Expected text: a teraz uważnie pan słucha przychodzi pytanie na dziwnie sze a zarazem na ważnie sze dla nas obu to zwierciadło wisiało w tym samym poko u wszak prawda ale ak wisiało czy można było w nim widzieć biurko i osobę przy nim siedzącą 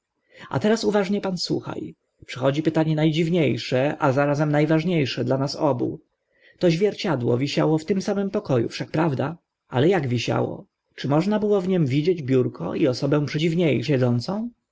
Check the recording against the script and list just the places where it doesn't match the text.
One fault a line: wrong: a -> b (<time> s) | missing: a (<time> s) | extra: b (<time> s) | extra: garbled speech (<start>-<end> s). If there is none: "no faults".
wrong: nim -> dziwnie (13.3 s)